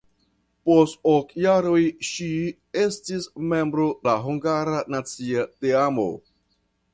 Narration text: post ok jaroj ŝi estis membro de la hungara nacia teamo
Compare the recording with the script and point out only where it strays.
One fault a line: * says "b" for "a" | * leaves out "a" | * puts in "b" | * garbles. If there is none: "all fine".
* leaves out "de"